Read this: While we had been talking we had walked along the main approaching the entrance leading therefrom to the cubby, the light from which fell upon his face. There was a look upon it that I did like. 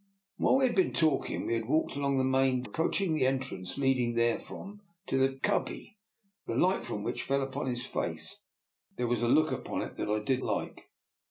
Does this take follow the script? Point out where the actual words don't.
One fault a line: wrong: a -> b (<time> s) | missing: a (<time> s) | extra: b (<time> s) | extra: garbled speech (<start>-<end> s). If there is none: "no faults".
no faults